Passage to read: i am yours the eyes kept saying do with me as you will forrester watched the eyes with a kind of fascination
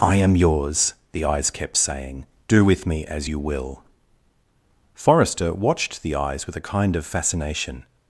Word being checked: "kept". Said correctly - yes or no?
yes